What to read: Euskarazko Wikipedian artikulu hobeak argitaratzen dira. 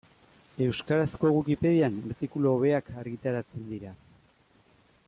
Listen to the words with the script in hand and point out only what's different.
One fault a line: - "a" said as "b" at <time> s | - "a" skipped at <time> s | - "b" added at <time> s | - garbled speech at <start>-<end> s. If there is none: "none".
none